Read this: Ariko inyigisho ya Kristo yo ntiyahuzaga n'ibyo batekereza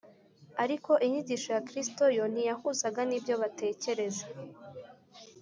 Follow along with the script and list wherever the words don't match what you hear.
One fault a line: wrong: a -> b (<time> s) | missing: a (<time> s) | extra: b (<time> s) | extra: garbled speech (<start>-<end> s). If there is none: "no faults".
no faults